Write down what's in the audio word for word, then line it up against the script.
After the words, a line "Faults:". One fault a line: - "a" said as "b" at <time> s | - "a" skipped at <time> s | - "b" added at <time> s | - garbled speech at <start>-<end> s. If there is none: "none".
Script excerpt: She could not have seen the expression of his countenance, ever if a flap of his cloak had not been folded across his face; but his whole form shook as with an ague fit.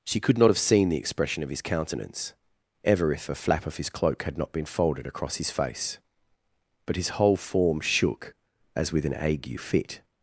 She could not have seen the expression of his countenance, ever if a flap of his cloak had not been folded across his face; but his whole form shook as with an ague fit.
Faults:
none